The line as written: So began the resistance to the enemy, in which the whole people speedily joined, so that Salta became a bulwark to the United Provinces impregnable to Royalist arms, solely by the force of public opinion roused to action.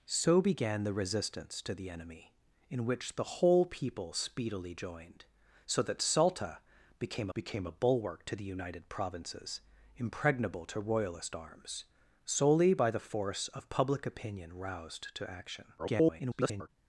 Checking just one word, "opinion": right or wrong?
right